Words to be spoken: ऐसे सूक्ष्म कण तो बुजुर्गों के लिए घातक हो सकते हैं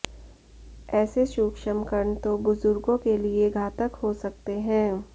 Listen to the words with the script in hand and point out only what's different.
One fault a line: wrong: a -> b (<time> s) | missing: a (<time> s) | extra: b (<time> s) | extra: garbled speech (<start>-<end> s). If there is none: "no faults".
no faults